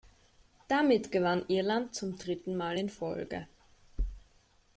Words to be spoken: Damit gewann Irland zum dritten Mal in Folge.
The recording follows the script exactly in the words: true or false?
true